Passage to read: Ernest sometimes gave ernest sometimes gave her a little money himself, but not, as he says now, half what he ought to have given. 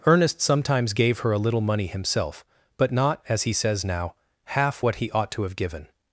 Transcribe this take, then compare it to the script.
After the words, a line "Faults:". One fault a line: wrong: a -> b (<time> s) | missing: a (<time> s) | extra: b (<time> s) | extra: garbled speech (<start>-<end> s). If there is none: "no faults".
Ernest sometimes gave her a little money himself, but not, as he says now, half what he ought to have given.
Faults:
missing: ernest sometimes gave (1.2 s)